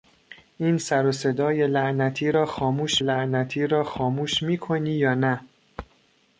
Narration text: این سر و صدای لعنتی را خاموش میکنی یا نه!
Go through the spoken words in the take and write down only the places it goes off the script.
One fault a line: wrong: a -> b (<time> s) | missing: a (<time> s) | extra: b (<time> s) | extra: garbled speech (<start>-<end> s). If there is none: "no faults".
extra: لعنتی را خاموش (3.0 s)